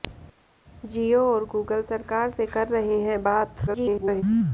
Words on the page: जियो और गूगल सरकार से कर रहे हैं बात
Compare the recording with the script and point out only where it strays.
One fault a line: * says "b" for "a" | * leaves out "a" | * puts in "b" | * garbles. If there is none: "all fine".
* garbles